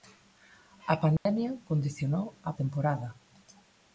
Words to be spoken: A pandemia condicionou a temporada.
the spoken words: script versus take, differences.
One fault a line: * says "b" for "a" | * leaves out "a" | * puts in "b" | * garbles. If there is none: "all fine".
all fine